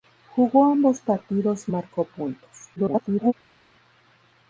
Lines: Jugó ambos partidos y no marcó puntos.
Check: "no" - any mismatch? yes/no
yes